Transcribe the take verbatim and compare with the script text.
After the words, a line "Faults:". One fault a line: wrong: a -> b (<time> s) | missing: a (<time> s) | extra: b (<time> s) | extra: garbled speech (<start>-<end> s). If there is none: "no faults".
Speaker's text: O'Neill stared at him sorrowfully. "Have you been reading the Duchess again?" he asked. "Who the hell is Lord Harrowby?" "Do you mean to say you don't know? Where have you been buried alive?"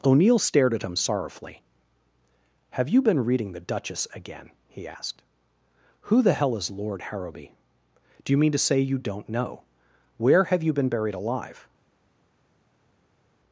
O'Neill stared at him sorrowfully. "Have you been reading the Duchess again?" he asked. "Who the hell is Lord Harrowby?" "Do you mean to say you don't know? Where have you been buried alive?"
Faults:
no faults